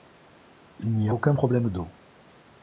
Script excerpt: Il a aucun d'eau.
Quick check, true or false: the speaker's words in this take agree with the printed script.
false